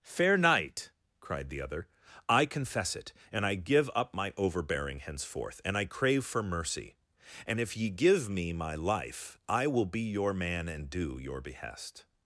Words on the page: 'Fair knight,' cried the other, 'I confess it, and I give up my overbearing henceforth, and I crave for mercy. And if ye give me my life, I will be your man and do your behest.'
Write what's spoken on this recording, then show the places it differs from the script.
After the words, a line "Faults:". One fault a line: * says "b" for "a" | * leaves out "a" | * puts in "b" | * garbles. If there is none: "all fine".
'Fair knight,' cried the other, 'I confess it, and I give up my overbearing henceforth, and I crave for mercy. And if ye give me my life, I will be your man and do your behest.'
Faults:
all fine